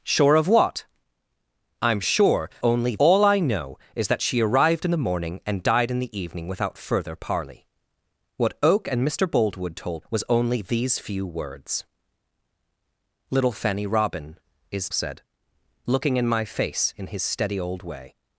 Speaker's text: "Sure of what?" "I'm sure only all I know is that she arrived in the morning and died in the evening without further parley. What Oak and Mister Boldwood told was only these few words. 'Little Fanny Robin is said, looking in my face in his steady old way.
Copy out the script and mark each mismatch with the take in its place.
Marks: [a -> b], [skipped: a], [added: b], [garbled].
"Sure of what?" "I'm sure only all I know is that she arrived in the morning and died in the evening without further parley. What Oak and Mister Boldwood told was only these few words. 'Little Fanny Robin is said, looking in my face in his steady old way.